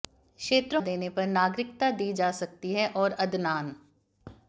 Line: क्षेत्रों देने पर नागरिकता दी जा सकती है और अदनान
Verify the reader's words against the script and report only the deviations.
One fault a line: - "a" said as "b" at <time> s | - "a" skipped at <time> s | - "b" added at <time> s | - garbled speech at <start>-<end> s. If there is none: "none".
none